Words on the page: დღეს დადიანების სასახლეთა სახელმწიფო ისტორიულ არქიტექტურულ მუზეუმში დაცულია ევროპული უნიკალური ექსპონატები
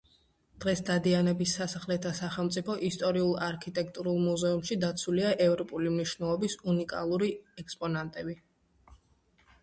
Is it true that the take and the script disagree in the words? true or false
true